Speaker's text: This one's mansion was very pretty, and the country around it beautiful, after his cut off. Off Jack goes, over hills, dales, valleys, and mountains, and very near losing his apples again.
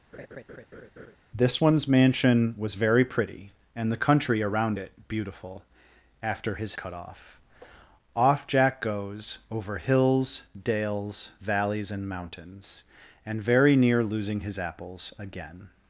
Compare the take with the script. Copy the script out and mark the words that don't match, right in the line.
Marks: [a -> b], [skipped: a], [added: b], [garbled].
This one's mansion was very pretty, and the country around it beautiful, after his cut off. Off Jack goes, over hills, dales, valleys, and mountains, and very near losing his apples again.